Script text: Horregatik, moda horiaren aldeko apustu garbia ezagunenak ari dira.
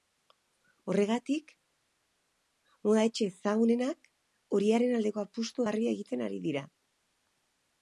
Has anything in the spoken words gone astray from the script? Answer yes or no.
yes